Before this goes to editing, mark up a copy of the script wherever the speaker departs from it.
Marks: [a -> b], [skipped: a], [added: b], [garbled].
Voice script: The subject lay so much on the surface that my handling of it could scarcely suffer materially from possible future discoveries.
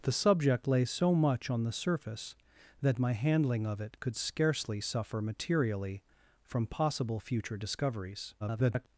The subject lay so much on the surface that my handling of it could scarcely suffer materially from possible future discoveries. [garbled]